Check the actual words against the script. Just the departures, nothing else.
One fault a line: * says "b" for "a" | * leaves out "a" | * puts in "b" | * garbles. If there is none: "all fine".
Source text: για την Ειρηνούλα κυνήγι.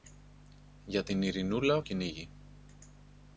all fine